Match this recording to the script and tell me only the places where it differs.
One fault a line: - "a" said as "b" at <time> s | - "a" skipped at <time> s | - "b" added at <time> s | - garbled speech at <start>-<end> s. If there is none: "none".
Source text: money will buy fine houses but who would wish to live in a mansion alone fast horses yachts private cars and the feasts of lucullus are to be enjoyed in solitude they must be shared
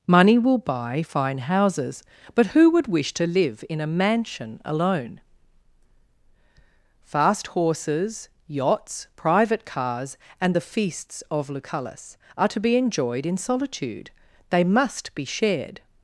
none